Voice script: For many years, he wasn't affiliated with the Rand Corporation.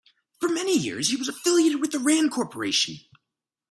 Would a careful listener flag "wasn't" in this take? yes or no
yes